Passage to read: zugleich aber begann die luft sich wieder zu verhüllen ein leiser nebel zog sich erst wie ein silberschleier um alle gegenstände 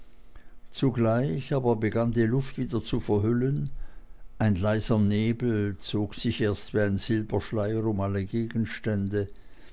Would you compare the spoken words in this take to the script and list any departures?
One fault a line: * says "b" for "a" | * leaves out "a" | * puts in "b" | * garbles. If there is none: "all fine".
* leaves out "sich"